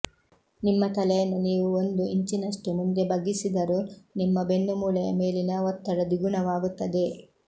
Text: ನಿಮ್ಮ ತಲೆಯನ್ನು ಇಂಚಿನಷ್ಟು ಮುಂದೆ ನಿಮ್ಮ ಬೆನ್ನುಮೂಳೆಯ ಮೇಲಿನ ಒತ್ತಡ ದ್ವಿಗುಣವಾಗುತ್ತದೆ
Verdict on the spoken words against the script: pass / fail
fail